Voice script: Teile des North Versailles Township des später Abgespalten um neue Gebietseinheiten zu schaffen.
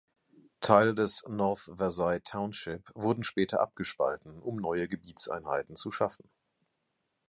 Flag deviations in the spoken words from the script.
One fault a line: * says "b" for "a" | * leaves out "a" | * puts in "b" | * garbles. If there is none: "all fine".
* says "wurden" for "des"